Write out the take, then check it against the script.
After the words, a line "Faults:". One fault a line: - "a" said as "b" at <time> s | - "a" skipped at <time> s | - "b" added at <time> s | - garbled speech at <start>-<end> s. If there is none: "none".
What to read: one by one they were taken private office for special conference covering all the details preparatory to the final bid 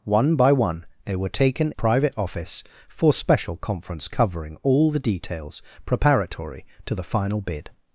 one by one they were taken private office for special conference covering all the details preparatory to the final bid
Faults:
none